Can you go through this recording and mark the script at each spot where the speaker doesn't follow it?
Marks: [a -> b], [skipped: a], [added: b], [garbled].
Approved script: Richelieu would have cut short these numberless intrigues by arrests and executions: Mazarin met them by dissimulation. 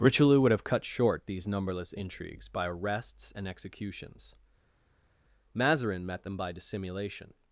Richelieu would have cut short these numberless intrigues by arrests and executions: Mazarin met them by dissimulation.